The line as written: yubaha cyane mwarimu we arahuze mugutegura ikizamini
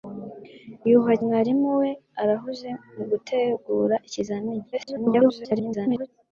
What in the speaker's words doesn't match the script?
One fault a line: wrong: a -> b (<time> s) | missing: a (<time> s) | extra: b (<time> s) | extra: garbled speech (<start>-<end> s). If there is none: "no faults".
missing: cyane (1.1 s)
extra: garbled speech (4.7-6.1 s)